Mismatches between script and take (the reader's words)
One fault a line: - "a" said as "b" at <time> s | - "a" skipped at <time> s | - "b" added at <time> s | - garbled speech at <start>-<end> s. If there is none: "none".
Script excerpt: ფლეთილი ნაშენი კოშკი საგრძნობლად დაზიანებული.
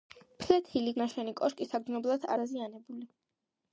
none